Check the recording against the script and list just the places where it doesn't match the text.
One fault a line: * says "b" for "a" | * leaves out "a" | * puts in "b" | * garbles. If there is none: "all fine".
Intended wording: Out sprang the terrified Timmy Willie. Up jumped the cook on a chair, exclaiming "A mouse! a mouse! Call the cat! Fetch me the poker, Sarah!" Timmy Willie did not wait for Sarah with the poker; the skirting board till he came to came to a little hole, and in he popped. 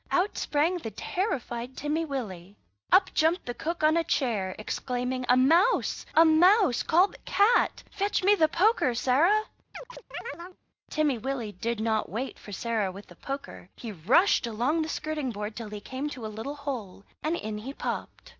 * puts in "he rushed along"
* leaves out "came to"